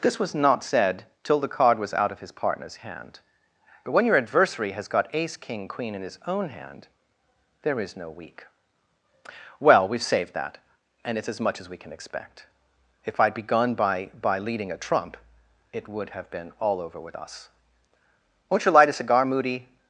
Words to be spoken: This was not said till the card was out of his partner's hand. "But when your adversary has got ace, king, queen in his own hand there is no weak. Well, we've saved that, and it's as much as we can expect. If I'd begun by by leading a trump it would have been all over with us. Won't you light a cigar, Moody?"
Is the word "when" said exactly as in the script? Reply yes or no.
yes